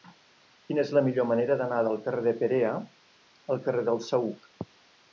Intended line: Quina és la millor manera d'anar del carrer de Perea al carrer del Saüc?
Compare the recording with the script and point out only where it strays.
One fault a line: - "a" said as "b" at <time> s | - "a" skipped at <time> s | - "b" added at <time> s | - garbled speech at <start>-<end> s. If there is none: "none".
none